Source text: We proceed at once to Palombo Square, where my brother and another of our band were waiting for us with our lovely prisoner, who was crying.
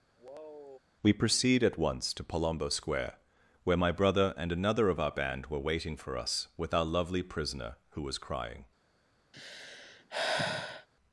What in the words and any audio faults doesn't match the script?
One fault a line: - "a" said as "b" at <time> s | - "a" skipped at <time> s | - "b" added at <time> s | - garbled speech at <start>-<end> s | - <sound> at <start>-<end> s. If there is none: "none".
- sigh at 0.2-0.8 s
- sigh at 9.3-10.9 s